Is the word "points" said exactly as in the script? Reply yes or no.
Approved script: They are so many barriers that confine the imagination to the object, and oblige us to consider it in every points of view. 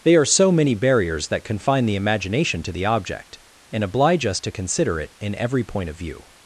no